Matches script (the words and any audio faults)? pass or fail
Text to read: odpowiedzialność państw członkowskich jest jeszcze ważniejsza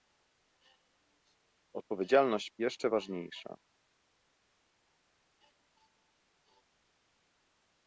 fail